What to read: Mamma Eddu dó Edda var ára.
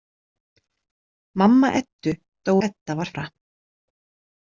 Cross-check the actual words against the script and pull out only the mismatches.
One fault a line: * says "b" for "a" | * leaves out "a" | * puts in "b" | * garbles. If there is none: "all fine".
all fine